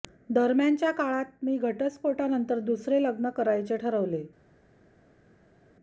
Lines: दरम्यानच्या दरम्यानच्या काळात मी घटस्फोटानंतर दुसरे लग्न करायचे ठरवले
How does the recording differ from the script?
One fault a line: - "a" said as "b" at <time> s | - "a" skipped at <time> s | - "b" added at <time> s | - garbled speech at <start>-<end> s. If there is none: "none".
- "दरम्यानच्या" skipped at 0.9 s